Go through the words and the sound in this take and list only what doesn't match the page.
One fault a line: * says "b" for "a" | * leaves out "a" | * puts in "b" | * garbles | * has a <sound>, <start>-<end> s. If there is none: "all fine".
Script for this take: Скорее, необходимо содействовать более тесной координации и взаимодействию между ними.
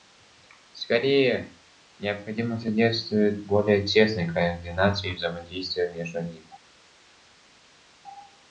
all fine